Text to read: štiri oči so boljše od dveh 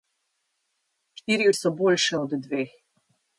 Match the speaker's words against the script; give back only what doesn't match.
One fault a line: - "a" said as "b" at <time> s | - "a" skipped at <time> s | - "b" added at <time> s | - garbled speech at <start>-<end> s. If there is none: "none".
- "oči" skipped at 1.5 s